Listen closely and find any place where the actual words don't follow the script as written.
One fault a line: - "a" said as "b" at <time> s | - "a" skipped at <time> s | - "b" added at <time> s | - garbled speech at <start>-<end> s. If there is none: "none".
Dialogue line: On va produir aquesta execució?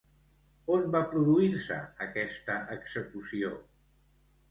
- "se" added at 1.7 s